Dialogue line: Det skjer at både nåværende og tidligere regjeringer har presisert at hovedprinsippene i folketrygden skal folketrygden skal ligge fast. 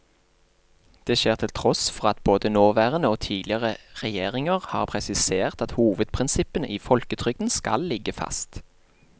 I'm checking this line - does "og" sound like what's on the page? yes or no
yes